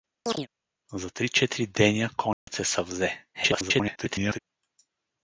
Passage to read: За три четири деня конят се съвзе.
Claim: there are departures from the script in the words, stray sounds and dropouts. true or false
true